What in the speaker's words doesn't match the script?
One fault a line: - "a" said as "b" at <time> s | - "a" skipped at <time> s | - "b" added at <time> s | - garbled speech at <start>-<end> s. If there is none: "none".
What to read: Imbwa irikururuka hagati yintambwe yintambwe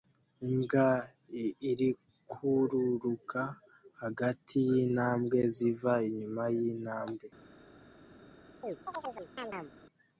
- "ziva inyuma" added at 5.5 s